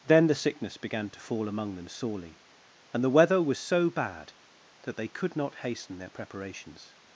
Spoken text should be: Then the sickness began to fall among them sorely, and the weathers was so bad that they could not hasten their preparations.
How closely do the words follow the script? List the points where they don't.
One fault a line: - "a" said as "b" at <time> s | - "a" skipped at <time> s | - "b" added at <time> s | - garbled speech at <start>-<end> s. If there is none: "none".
- "weathers" said as "weather" at 3.1 s